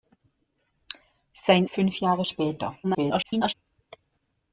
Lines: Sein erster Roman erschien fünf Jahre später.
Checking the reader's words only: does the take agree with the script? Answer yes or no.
no